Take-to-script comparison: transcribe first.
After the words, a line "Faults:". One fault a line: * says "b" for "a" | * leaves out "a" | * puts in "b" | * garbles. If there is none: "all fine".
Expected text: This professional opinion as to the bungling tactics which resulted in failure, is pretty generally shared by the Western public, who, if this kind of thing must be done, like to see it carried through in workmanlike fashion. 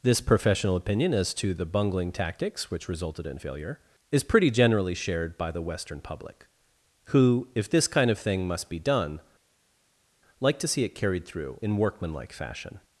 This professional opinion as to the bungling tactics which resulted in failure, is pretty generally shared by the Western public, who, if this kind of thing must be done, like to see it carried through in workmanlike fashion.
Faults:
all fine